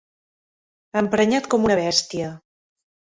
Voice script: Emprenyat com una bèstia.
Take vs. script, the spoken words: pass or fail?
pass